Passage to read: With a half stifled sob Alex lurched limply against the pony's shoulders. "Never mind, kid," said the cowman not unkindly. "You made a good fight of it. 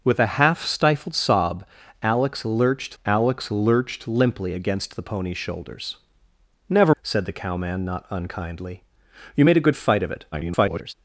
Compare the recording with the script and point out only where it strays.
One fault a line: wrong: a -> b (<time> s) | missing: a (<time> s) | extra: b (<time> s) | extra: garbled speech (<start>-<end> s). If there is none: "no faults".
extra: Alex lurched (3.0 s)
missing: mind kid (6.9 s)
extra: garbled speech (10.3-10.9 s)